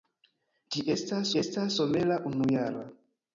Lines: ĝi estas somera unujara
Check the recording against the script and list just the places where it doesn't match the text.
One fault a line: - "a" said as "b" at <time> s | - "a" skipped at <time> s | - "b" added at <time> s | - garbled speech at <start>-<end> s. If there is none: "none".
- "estas" added at 1.4 s